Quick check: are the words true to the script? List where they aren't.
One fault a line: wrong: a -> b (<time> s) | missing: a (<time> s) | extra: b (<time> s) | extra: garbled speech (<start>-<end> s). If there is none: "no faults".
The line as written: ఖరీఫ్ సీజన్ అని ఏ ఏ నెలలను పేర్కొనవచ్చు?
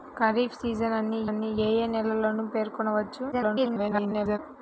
extra: అని (1.2 s)
extra: garbled speech (3.3-4.4 s)